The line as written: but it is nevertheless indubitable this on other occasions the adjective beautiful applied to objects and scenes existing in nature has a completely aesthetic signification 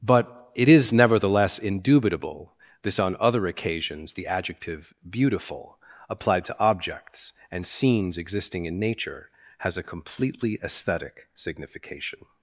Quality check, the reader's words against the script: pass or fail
pass